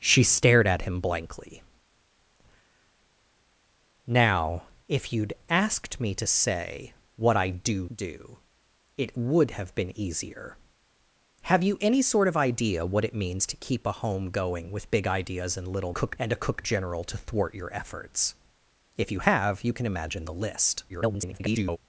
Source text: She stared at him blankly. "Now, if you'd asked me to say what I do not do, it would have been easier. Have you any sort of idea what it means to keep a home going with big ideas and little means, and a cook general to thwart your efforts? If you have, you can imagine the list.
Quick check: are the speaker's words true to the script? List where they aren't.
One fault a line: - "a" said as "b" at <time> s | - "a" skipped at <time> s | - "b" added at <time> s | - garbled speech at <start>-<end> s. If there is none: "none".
- "not" skipped at 7.8 s
- "means" said as "cook" at 15.9 s
- garbled speech at 20.9-21.8 s